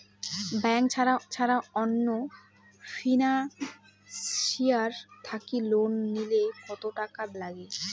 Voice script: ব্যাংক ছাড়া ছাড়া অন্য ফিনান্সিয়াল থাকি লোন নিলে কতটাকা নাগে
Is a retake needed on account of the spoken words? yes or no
no